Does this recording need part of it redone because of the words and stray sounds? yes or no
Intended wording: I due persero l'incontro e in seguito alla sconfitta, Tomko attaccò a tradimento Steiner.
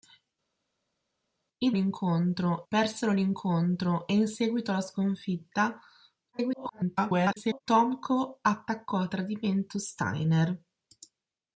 yes